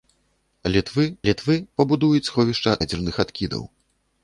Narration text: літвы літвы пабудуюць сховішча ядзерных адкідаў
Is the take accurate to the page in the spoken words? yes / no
yes